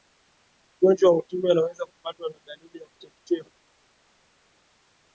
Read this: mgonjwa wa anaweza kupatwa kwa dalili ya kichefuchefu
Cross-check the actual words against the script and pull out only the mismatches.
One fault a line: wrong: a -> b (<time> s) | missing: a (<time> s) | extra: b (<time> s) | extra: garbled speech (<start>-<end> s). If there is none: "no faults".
extra: ukimwi (1.2 s)
wrong: kwa -> na (2.3 s)